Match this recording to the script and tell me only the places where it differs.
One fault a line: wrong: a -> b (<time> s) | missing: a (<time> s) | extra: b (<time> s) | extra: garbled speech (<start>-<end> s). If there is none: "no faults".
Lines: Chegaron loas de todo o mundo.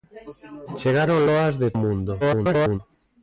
missing: todo (1.7 s)
extra: garbled speech (2.2-2.8 s)